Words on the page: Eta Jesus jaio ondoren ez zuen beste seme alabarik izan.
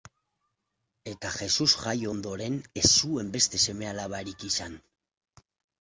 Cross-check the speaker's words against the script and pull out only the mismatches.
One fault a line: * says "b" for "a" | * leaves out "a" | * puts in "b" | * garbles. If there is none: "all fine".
all fine